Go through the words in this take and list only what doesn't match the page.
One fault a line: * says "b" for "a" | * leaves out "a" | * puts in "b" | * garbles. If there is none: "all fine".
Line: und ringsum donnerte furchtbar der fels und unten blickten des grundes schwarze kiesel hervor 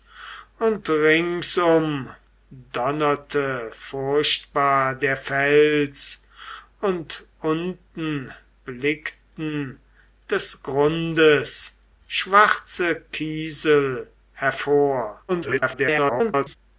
* garbles